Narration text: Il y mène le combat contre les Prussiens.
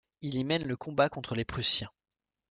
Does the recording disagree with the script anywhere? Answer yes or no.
no